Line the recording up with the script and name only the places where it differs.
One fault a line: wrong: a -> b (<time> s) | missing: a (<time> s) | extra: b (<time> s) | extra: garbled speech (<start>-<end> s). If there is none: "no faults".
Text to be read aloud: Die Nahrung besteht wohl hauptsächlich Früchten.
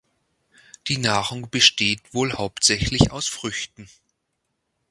extra: aus (3.1 s)